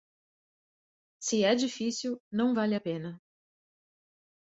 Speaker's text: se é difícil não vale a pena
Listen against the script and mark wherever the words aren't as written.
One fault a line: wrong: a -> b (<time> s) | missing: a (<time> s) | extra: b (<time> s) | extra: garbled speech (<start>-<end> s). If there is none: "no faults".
no faults